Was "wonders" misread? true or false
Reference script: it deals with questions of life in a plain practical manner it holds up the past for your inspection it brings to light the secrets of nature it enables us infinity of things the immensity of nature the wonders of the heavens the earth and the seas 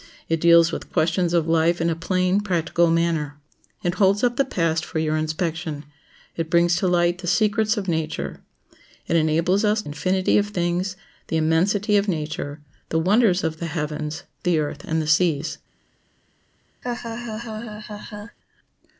false